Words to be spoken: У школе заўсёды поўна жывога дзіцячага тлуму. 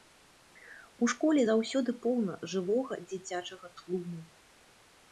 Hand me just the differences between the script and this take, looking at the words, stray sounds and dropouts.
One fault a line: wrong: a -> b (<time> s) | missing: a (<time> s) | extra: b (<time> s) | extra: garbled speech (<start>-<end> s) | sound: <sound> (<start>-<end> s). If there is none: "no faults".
no faults